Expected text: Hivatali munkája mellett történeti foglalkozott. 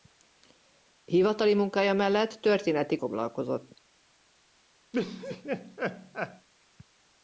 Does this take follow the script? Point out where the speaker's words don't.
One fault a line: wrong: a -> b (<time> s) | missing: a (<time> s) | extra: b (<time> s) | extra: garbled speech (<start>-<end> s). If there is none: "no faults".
no faults